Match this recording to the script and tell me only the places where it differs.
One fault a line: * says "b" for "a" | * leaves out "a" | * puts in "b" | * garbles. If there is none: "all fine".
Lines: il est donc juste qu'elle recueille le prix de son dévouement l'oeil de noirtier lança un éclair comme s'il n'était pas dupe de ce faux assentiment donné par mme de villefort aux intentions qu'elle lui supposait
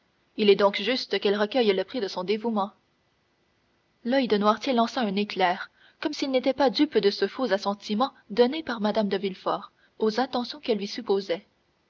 all fine